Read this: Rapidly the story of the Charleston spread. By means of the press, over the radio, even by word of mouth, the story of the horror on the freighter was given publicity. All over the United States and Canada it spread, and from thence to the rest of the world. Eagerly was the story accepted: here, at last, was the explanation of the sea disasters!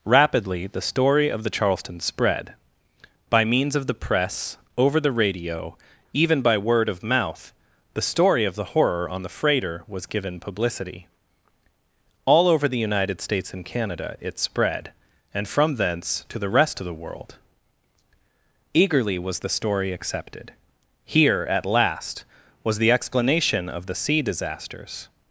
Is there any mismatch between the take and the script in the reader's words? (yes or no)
no